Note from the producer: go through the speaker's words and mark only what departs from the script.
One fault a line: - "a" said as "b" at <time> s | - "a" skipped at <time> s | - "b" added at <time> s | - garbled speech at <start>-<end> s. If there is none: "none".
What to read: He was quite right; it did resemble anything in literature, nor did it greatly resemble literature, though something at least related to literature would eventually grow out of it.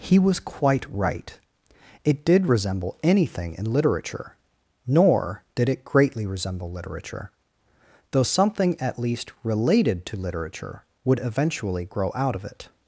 none